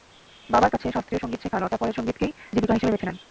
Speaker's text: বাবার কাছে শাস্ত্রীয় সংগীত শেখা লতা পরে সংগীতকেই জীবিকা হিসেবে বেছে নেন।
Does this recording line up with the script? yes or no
yes